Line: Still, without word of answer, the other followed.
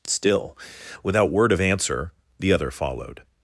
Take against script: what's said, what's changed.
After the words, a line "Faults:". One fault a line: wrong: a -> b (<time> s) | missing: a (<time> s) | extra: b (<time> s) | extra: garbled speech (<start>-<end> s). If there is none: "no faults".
Still, without word of answer, the other followed.
Faults:
no faults